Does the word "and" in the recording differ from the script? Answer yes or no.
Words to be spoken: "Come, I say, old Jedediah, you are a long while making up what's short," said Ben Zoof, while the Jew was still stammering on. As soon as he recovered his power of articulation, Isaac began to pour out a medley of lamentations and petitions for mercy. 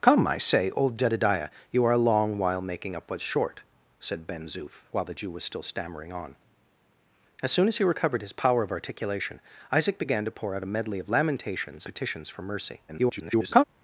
yes